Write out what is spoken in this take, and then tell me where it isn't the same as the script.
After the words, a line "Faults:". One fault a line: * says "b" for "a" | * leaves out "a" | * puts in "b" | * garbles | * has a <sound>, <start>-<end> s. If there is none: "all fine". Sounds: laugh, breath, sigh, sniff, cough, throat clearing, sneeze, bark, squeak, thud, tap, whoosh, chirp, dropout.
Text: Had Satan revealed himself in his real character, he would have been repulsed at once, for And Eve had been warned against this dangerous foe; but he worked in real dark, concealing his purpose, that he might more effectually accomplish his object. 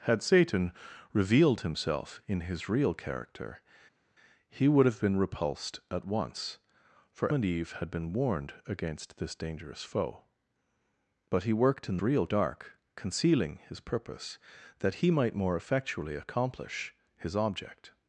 Had Satan revealed himself in his real character, he would have been repulsed at once, for And Eve had been warned against this dangerous foe; but he worked in real dark, concealing his purpose, that he might more effectually accomplish his object.
Faults:
all fine